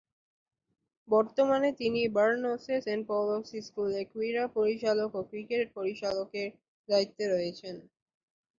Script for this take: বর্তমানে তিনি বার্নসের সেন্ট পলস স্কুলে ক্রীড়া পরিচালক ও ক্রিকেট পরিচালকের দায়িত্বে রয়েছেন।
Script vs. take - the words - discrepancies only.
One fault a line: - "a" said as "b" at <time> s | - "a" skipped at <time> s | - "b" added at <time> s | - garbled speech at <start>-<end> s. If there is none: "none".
none